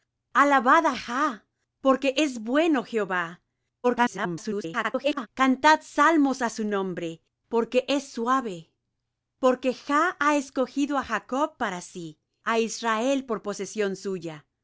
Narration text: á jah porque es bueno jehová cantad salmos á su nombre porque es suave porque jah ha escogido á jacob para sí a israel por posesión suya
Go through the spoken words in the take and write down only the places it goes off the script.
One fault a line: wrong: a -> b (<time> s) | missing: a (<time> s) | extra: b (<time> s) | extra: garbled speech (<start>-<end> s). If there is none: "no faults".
extra: garbled speech (3.8-5.3 s)